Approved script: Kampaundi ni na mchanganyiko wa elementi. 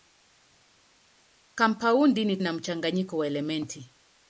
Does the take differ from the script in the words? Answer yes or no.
no